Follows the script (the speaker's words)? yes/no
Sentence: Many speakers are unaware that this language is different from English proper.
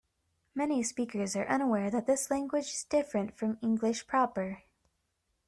yes